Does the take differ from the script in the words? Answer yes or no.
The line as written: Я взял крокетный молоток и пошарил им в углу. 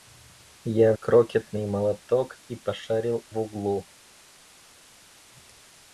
yes